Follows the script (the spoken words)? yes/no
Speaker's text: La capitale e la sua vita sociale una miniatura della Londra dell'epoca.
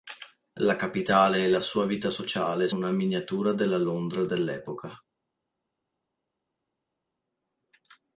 yes